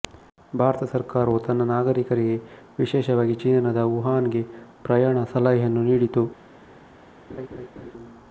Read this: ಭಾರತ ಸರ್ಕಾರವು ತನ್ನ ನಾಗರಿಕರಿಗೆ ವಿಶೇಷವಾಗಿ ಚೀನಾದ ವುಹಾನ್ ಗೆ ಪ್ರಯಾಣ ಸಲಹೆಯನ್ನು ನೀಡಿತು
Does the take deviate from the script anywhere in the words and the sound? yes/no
yes